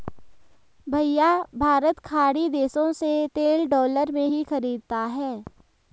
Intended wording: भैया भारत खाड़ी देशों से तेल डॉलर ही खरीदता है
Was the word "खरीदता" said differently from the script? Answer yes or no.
no